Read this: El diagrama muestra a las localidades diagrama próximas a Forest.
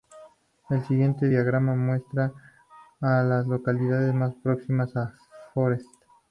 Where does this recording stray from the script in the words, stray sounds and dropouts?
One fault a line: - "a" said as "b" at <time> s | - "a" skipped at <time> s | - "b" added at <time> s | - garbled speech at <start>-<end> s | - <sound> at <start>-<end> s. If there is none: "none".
- "siguiente" added at 0.9 s
- "diagrama" said as "más" at 4.1 s